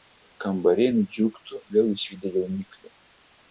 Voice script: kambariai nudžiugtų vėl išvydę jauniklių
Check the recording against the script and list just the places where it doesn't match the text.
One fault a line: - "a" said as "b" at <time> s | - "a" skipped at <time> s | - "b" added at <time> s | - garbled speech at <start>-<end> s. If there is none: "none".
none